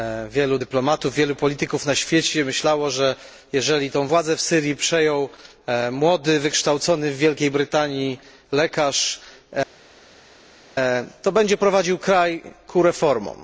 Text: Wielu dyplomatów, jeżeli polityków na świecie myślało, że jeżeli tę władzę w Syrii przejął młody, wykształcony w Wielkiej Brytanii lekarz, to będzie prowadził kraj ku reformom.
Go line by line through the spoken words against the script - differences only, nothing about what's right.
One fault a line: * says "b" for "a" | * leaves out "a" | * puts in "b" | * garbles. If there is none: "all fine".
* says "wielu" for "jeżeli"